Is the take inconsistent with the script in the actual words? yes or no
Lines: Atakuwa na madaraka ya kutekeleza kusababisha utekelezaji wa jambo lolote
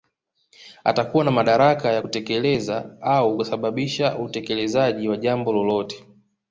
yes